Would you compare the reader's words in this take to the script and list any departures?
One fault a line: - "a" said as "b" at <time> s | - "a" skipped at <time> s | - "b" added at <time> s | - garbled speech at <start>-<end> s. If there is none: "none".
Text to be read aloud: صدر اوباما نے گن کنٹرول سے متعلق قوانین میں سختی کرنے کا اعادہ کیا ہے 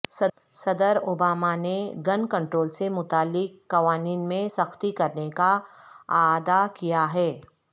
none